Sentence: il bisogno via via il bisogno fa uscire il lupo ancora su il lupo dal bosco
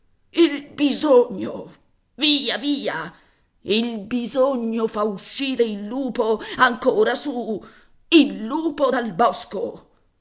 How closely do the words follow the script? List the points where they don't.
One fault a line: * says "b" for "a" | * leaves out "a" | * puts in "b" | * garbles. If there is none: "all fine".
all fine